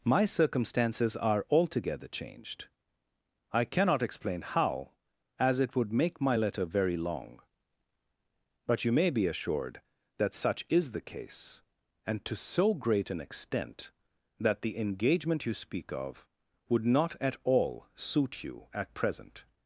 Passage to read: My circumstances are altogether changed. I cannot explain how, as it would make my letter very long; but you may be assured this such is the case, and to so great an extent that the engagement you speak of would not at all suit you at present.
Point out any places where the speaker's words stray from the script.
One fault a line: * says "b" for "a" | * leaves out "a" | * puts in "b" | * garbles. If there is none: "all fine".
* says "that" for "this"